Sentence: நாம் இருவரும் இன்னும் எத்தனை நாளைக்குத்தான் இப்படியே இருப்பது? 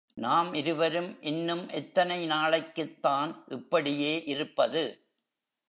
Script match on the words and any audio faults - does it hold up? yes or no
yes